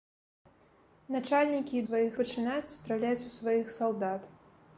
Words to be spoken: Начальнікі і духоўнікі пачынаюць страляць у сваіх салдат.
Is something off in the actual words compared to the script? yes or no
yes